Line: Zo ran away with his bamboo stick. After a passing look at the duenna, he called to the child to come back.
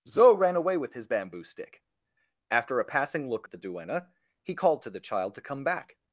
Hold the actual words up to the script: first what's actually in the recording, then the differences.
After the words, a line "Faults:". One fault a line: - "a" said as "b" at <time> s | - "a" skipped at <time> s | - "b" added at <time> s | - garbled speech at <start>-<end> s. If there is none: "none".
Zo ran away with his bamboo stick. After a passing look at the duenna, he called to the child to come back.
Faults:
none